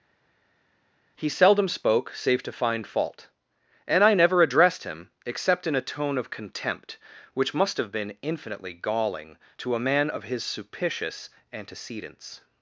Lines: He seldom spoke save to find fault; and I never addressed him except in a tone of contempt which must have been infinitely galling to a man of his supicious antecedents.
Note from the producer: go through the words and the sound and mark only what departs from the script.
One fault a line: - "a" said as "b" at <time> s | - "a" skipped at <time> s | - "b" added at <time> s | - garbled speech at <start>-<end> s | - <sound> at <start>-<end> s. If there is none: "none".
none